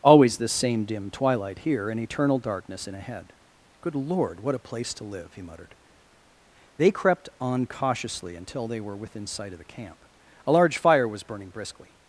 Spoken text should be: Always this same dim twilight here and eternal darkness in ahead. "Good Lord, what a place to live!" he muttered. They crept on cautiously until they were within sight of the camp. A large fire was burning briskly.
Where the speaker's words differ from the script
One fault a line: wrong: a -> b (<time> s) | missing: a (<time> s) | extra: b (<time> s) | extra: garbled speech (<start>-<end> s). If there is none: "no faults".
no faults